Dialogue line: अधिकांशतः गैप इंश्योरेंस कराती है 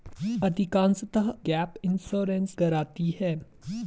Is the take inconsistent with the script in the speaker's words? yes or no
no